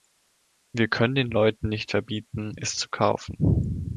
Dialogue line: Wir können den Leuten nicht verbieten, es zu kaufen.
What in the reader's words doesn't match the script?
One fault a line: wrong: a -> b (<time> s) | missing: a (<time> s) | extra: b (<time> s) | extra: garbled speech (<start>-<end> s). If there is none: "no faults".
no faults